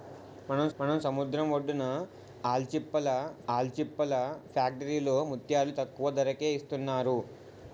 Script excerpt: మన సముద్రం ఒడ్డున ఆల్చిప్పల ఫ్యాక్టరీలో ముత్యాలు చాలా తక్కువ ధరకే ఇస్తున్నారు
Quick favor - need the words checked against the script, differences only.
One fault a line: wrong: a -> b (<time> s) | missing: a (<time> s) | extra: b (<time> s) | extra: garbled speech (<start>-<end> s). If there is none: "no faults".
extra: మన (0.8 s)
extra: ఆల్చిప్పల (3.5 s)
missing: చాలా (5.7 s)